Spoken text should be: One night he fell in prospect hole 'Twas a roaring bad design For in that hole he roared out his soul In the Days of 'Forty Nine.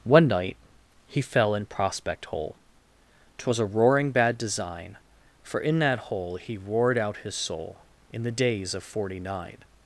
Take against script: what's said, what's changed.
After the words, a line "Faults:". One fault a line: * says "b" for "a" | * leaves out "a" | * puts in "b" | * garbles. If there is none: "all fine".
One night he fell in prospect hole 'Twas a roaring bad design For in that hole he roared out his soul In the Days of 'Forty Nine.
Faults:
all fine